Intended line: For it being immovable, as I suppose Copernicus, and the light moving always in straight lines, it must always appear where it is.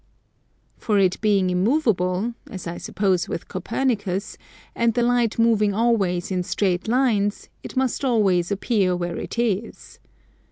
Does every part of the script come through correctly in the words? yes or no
no